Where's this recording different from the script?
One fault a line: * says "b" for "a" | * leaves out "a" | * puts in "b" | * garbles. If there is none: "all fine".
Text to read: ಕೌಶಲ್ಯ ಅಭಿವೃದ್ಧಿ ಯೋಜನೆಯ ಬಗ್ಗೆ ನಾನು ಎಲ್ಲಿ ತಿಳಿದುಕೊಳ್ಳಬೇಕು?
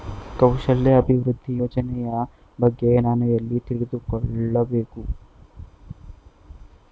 all fine